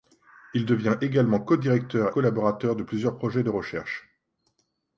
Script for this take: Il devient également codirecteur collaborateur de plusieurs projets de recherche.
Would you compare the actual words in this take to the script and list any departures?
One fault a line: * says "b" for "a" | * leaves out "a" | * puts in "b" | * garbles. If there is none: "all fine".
all fine